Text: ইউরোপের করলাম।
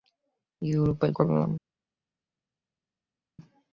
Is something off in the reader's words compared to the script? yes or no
no